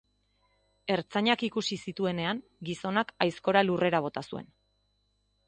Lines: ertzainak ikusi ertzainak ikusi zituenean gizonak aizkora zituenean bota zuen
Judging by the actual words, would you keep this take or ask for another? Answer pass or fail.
fail